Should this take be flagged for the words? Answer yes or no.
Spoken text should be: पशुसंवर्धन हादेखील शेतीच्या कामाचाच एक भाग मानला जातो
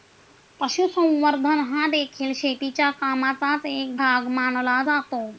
no